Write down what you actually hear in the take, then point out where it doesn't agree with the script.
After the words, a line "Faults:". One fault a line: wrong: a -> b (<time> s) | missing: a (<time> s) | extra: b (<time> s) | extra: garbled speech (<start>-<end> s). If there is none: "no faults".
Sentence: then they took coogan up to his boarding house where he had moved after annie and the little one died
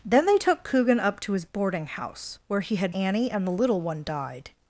then they took coogan up to his boarding house where he had annie and the little one died
Faults:
missing: moved after (3.0 s)